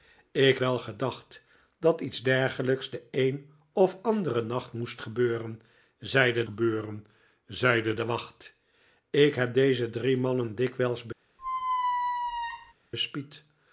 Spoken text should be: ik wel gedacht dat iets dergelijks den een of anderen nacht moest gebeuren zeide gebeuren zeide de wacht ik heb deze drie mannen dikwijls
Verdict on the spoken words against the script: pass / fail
pass